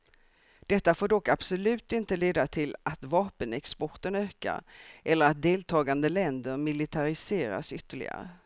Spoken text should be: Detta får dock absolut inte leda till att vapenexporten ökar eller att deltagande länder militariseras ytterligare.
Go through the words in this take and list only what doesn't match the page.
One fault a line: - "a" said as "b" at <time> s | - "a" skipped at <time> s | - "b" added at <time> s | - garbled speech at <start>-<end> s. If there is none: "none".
none